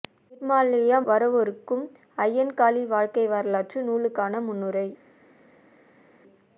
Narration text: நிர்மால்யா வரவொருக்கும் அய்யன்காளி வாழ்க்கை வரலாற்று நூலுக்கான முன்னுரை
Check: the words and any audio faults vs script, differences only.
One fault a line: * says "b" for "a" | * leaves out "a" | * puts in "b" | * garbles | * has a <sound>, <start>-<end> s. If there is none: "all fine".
all fine